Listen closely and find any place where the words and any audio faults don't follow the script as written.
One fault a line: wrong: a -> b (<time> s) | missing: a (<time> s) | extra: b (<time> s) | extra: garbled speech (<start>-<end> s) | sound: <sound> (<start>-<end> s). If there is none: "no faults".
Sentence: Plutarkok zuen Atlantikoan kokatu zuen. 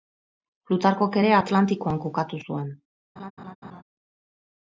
wrong: zuen -> ere (1.2 s)
sound: laugh (3.2-3.8 s)